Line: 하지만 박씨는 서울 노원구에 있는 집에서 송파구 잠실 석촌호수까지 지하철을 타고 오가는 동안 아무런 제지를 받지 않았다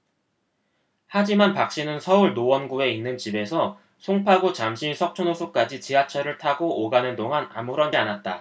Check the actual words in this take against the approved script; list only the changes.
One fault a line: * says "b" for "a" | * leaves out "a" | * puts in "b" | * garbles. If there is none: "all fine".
* leaves out "제지를 받지"